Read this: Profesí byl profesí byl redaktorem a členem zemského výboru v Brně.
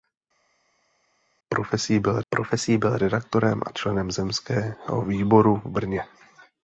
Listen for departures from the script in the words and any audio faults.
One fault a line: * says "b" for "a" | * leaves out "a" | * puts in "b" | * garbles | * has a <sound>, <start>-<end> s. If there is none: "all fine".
all fine